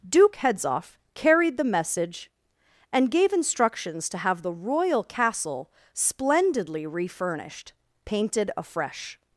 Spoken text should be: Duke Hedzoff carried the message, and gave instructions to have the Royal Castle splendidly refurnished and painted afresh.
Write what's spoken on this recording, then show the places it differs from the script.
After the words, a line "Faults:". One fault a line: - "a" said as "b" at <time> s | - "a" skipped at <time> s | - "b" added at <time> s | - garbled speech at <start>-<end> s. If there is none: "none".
Duke Hedzoff carried the message, and gave instructions to have the Royal Castle splendidly refurnished painted afresh.
Faults:
- "and" skipped at 7.7 s